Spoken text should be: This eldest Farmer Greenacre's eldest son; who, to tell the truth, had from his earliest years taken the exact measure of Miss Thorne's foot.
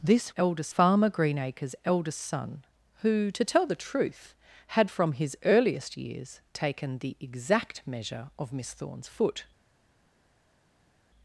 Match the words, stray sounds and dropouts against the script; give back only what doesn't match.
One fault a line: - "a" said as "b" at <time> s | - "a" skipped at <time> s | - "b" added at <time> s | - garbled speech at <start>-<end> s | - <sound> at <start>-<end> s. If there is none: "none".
none